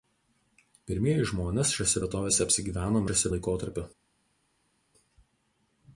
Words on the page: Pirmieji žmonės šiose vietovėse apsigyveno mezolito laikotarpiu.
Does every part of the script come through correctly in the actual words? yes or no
no